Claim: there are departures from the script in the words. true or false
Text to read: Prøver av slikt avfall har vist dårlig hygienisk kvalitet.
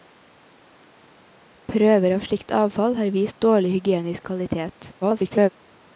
true